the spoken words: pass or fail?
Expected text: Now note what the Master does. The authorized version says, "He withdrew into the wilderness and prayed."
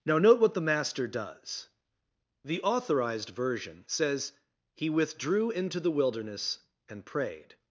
pass